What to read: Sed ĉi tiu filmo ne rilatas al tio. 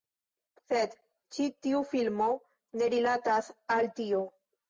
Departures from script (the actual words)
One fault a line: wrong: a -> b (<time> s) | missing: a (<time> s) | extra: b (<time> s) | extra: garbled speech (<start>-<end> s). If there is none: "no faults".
no faults